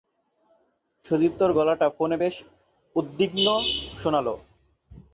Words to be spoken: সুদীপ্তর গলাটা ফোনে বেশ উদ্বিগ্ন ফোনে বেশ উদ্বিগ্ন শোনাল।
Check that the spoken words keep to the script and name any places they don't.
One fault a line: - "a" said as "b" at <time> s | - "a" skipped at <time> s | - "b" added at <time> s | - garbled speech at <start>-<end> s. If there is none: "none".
- "ফোনে বেশ উদ্বিগ্ন" skipped at 3.5 s